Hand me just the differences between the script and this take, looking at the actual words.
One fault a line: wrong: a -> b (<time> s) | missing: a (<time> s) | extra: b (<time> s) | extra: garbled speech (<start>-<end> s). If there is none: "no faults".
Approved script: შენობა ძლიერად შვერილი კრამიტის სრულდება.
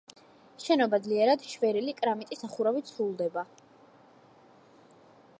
extra: სახურავით (2.5 s)